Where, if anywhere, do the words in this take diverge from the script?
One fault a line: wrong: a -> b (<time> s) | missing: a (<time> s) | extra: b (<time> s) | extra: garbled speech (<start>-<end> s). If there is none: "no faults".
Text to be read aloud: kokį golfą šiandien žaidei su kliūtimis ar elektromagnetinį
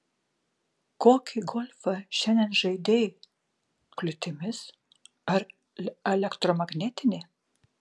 missing: su (3.0 s)